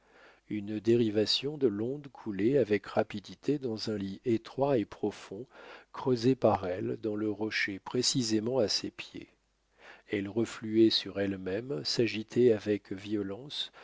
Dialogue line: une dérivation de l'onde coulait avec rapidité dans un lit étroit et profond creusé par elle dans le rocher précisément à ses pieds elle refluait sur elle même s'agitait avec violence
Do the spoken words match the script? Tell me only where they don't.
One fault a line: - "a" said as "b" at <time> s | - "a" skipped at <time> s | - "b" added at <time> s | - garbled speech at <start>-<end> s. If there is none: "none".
none